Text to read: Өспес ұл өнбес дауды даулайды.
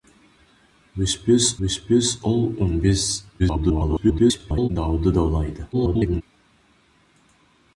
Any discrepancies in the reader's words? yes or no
yes